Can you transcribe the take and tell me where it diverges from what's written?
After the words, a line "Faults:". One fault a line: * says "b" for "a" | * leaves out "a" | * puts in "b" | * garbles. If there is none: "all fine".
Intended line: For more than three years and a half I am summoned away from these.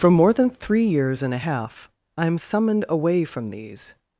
For more than three years and a half I am summoned away from these.
Faults:
all fine